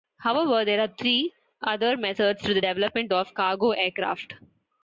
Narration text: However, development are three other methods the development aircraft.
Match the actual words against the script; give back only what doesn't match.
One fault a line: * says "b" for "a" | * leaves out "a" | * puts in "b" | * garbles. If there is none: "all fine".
* says "there" for "development"
* puts in "to"
* puts in "of cargo"